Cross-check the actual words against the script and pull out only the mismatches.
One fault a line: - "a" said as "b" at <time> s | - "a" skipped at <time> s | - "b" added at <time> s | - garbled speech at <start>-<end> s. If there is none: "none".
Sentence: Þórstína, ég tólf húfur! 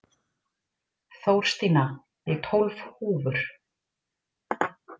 none